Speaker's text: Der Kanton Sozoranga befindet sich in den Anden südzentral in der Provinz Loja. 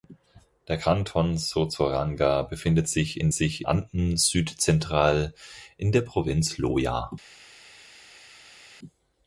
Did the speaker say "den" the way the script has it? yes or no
no